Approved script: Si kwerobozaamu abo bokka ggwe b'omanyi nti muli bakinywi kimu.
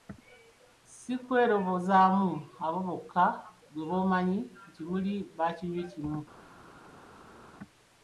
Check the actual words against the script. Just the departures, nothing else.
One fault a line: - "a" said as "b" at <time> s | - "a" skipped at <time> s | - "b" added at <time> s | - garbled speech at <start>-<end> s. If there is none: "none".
none